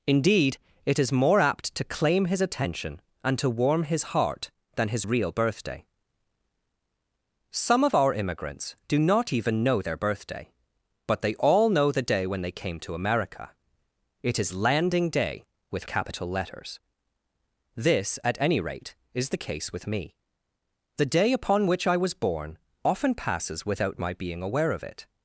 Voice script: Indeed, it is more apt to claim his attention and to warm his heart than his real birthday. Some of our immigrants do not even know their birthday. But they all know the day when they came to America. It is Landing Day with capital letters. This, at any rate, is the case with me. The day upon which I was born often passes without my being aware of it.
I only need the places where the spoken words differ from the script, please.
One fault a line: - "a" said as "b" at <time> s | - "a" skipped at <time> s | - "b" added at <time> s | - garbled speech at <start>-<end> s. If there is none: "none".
none